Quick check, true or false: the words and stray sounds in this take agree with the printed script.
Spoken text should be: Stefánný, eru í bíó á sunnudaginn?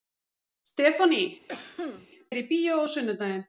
false